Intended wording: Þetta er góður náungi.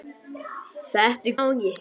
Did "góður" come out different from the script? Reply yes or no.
yes